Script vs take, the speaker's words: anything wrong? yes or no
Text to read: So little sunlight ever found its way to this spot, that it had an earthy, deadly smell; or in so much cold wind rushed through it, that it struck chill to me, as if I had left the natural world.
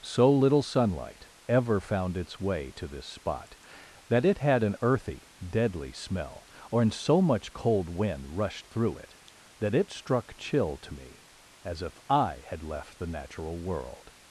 no